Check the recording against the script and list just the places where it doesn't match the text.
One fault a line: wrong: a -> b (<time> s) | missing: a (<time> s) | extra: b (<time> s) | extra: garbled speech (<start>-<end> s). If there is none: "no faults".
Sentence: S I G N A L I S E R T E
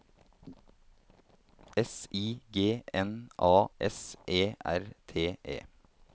missing: L I (3.7 s)